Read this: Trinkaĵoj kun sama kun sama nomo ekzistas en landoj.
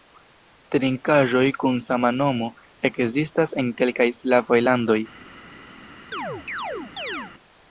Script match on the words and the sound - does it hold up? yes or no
no